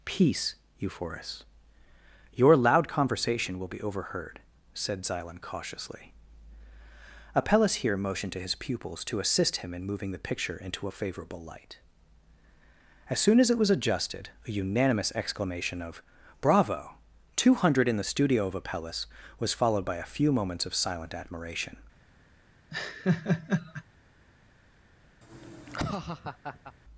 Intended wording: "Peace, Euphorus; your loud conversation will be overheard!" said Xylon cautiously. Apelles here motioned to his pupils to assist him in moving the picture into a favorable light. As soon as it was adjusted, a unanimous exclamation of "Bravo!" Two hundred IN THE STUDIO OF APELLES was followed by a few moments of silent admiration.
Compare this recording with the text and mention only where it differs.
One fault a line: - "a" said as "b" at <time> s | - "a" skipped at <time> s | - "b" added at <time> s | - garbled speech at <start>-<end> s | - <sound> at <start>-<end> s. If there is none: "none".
- laugh at 22.7-23.8 s
- laugh at 25.2-26.7 s